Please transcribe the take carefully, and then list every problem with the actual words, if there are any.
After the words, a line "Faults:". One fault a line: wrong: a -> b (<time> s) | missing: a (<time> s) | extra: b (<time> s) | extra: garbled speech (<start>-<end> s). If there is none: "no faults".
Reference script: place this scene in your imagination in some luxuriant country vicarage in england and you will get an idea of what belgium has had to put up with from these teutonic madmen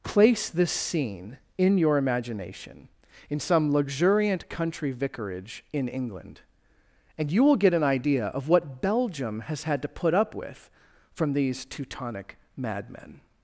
place this scene in your imagination in some luxuriant country vicarage in england and you will get an idea of what belgium has had to put up with from these teutonic madmen
Faults:
no faults